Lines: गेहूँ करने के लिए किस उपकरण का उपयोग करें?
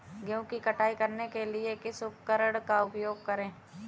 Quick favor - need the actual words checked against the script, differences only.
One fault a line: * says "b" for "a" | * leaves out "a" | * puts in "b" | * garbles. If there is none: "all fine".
* puts in "की कटाई"